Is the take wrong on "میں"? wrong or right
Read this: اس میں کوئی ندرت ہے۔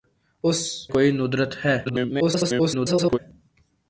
wrong